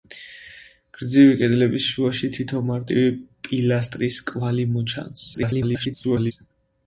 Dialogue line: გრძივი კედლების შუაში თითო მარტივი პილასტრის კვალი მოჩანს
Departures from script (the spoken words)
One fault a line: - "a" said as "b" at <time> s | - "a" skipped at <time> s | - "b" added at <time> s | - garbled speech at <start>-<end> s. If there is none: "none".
- garbled speech at 5.3-6.3 s